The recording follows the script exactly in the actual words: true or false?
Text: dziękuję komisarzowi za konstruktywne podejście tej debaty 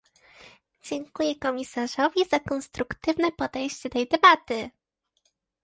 true